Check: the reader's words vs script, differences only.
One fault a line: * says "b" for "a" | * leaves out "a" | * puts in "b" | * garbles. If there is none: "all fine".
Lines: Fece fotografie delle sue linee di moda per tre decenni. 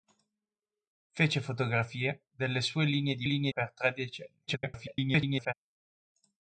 * says "linee" for "moda"
* garbles